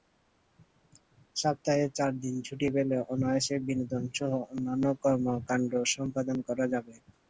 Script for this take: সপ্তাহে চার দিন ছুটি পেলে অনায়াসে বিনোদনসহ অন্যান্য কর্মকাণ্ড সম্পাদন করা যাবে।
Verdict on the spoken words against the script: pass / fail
pass